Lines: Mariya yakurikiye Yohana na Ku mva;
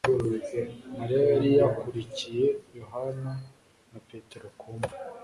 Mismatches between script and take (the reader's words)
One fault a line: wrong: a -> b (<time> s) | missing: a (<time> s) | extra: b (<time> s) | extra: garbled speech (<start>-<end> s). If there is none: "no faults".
extra: yari (1.3 s)
extra: Petero (4.1 s)